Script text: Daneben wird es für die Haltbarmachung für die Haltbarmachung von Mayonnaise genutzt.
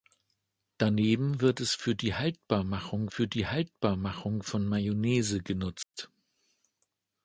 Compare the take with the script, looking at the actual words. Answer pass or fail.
pass